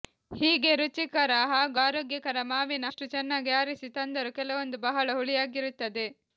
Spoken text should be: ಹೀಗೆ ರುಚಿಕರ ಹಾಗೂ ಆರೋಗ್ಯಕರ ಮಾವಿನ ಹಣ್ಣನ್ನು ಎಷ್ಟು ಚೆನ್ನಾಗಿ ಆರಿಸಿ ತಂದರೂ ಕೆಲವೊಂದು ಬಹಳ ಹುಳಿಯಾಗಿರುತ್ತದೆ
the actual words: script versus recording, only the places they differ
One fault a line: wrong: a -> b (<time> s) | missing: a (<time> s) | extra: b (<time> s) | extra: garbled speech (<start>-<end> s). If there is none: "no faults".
missing: ಹಣ್ಣನ್ನು (2.9 s)